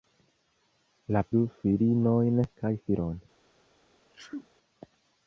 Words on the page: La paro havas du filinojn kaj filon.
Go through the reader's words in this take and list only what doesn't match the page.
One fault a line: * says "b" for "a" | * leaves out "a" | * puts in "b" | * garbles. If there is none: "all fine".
* leaves out "paro havas"